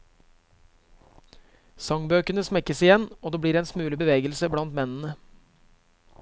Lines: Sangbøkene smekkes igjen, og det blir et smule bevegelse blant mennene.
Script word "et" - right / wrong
wrong